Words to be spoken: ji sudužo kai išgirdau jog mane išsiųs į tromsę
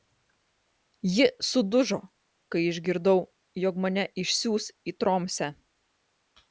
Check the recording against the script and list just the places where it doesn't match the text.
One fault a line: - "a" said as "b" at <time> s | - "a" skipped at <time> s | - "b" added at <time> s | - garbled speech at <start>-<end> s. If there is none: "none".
none